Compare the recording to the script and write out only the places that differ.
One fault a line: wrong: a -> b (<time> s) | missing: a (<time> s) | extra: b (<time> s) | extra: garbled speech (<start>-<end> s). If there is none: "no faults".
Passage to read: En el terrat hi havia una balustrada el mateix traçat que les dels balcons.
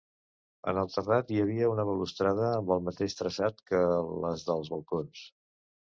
extra: amb (2.5 s)